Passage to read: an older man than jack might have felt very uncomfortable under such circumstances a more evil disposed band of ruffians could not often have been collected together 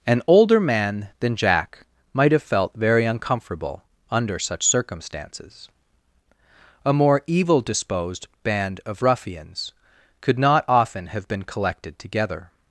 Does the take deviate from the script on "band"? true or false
false